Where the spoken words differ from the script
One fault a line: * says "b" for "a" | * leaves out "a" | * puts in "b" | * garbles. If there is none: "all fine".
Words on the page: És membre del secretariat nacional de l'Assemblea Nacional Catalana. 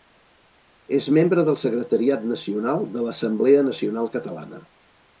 all fine